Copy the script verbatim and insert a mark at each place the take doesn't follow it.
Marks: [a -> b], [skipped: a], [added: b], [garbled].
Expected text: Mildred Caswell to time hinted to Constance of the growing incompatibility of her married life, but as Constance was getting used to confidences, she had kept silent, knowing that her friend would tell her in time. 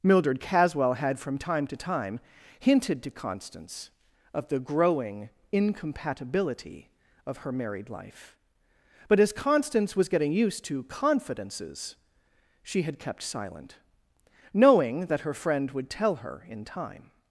Mildred Caswell [added: had from time] to time hinted to Constance of the growing incompatibility of her married life, but as Constance was getting used to confidences, she had kept silent, knowing that her friend would tell her in time.